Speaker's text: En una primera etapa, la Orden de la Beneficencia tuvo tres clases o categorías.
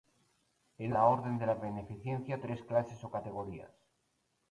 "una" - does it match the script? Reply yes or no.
no